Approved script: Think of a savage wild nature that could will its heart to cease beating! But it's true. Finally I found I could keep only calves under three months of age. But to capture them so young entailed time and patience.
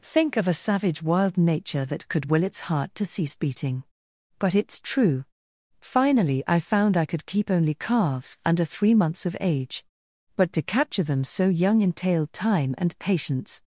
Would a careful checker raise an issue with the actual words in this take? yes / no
no